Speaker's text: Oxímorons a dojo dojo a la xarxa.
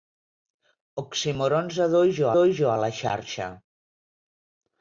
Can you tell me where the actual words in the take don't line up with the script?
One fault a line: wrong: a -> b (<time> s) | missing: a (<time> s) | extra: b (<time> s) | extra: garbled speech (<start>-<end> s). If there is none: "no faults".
no faults